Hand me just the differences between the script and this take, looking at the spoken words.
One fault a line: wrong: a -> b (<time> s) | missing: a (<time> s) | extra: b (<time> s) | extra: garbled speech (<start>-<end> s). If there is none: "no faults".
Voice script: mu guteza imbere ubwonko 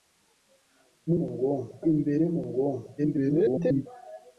wrong: guteza -> ubwonko (1.3 s)
extra: garbled speech (3.0-3.9 s)